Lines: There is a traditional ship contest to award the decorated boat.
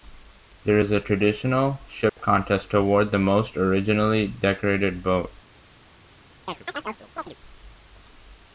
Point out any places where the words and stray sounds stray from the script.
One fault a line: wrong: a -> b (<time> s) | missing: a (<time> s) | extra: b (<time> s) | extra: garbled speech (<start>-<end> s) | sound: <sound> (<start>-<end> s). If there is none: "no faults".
sound: dropout (2.1-2.2 s)
extra: most originally (3.2 s)
sound: chirp (6.5-7.4 s)